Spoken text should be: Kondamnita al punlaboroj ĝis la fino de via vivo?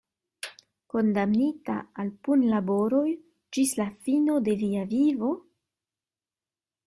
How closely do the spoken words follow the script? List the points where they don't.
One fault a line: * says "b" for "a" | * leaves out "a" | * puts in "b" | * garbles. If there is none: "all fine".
all fine